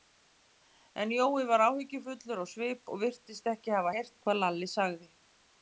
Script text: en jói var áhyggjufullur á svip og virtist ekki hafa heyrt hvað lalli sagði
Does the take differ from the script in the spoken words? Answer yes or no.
no